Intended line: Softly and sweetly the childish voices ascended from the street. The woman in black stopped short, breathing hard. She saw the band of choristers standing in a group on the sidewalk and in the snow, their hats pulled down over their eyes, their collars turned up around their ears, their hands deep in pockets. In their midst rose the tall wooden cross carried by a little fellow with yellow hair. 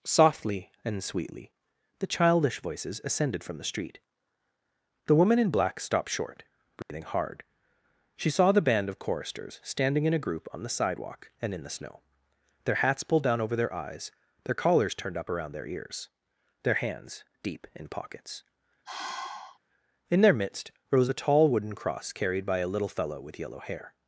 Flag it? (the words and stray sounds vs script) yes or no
yes